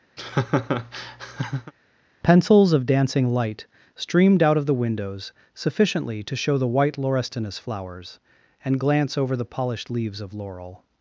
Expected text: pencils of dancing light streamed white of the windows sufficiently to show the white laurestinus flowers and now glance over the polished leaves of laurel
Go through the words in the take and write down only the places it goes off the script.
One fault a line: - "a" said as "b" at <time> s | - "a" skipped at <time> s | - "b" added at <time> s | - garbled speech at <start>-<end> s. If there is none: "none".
- "white" said as "out" at 4.4 s
- "now" skipped at 8.8 s